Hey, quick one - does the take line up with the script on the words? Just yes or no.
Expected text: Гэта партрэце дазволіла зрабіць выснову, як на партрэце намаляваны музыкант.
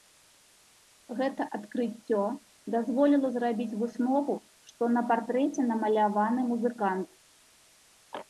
no